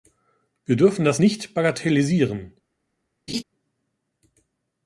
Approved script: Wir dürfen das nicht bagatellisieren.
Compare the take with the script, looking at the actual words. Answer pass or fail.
pass